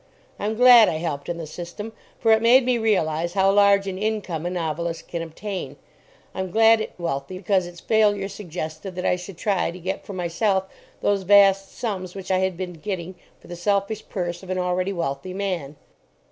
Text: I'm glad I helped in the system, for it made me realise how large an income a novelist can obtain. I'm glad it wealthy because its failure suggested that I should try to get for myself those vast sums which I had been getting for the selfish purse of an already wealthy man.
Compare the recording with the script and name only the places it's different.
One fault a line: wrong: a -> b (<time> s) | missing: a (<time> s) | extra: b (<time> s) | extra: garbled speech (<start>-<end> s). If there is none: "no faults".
no faults